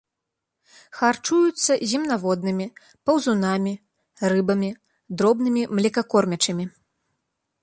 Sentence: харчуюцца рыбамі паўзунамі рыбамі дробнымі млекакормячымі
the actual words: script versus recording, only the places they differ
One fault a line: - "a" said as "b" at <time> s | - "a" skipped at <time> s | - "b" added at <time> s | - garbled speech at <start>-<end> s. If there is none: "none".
- "рыбамі" said as "земнаводнымі" at 1.9 s